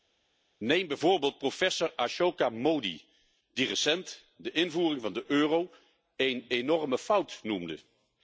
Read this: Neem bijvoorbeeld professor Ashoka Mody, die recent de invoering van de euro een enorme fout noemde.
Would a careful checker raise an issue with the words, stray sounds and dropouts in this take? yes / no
no